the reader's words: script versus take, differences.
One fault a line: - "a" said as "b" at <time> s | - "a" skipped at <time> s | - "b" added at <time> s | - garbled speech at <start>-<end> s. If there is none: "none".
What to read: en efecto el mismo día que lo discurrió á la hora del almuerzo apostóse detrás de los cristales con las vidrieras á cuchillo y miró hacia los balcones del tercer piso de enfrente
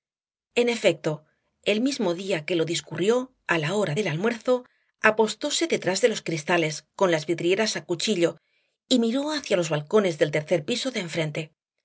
none